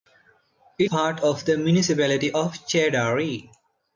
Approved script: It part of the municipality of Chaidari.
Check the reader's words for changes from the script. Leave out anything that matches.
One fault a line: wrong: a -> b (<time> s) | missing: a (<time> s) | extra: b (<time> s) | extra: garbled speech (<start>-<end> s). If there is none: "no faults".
no faults